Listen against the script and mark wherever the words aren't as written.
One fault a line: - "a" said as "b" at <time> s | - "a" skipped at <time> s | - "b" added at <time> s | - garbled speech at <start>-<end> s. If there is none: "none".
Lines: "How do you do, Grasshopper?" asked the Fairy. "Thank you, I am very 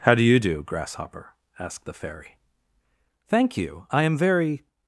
none